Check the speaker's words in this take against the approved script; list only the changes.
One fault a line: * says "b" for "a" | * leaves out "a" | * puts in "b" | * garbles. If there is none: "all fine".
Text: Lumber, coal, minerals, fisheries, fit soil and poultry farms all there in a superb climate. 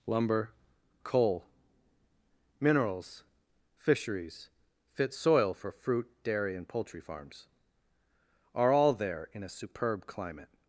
* puts in "for fruit dairy"
* puts in "are"